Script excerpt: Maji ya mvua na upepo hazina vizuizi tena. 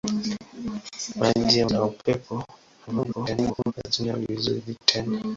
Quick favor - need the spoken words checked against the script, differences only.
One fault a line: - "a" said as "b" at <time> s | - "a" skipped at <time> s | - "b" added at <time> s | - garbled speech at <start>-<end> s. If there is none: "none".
- "mvua" skipped at 1.7 s
- garbled speech at 2.9-3.7 s